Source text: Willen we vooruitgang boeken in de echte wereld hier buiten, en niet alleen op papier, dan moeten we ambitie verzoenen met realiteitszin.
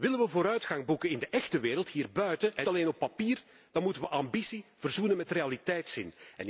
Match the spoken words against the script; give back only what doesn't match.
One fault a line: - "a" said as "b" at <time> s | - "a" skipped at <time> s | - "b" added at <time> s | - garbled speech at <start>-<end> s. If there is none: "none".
- "niet" skipped at 2.7 s